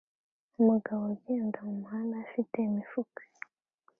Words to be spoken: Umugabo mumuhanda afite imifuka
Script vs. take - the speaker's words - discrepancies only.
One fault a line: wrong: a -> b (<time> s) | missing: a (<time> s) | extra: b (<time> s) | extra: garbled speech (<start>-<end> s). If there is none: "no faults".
extra: ugenda (1.1 s)